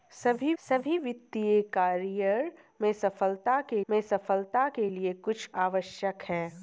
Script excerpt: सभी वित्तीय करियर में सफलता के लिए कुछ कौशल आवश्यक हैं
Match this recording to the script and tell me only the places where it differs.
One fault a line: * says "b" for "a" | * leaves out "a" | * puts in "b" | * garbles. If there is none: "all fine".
* puts in "सभी"
* puts in "में सफलता के"
* leaves out "कौशल"